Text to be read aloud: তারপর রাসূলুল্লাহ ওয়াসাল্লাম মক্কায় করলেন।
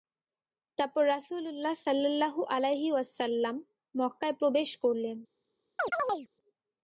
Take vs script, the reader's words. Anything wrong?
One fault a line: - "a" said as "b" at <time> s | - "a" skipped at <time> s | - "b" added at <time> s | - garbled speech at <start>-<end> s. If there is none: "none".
- "সাল্লাল্লাহু আলাইহি" added at 1.9 s
- "প্রবেশ" added at 4.4 s